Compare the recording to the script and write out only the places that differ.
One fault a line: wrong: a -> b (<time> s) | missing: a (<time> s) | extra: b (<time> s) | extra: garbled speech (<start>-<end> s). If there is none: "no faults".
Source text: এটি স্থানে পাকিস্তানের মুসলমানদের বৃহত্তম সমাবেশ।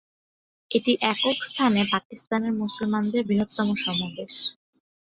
extra: একক (1.1 s)